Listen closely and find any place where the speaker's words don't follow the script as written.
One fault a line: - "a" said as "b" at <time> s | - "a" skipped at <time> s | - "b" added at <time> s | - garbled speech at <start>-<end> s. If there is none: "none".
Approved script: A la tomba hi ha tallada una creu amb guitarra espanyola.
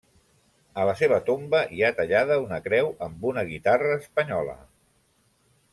- "seva" added at 1.0 s
- "una" added at 3.3 s